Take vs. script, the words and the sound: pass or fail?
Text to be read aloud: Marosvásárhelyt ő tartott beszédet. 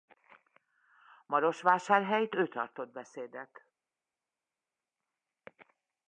pass